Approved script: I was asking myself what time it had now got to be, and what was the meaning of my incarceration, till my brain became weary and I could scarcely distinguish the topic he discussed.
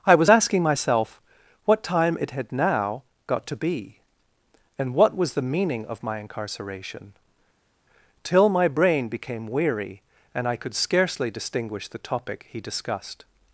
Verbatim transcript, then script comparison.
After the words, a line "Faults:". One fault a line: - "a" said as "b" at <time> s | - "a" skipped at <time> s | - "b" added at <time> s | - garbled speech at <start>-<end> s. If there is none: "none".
I was asking myself what time it had now got to be, and what was the meaning of my incarceration, till my brain became weary and I could scarcely distinguish the topic he discussed.
Faults:
none